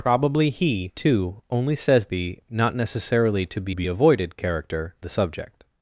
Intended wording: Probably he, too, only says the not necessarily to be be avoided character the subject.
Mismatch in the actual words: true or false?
false